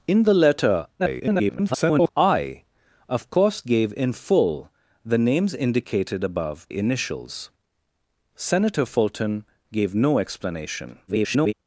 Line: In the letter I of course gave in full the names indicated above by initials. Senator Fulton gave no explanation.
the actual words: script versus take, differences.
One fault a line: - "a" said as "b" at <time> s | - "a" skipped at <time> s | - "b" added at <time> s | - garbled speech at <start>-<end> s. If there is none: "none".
- garbled speech at 1.0-2.1 s
- "by" skipped at 6.7 s
- garbled speech at 11.1-11.5 s